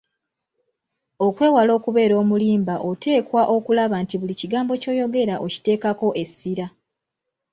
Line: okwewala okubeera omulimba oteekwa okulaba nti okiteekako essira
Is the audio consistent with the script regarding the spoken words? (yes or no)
no